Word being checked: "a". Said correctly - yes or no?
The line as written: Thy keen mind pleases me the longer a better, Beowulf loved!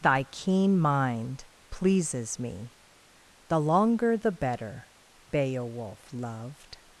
no